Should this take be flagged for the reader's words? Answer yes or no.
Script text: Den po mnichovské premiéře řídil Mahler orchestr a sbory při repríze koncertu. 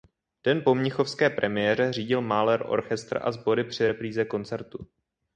no